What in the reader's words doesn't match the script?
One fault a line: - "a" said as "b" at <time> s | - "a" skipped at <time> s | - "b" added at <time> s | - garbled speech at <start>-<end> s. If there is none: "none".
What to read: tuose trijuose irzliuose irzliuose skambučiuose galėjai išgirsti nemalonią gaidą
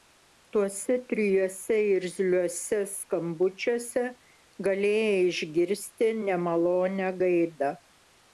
- "irzliuose" skipped at 2.8 s